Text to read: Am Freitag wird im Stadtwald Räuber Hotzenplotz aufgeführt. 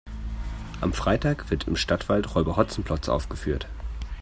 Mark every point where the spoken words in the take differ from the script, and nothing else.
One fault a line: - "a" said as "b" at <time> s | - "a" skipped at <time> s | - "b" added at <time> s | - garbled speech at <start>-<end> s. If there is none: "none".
none